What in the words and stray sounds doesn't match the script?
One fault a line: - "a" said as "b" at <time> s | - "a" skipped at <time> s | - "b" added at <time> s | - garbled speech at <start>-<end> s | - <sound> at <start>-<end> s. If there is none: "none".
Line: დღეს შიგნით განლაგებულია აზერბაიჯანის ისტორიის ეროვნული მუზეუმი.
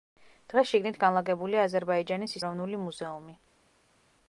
- "ისტორიის" skipped at 2.4 s